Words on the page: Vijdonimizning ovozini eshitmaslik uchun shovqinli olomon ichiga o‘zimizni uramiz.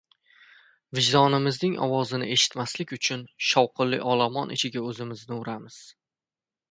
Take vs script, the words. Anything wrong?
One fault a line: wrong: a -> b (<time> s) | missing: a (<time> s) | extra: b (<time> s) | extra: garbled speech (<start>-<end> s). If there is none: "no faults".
no faults